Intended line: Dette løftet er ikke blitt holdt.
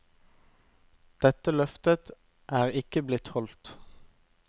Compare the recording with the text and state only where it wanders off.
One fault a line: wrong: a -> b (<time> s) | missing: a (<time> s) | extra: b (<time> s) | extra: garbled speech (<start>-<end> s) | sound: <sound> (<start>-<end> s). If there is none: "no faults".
no faults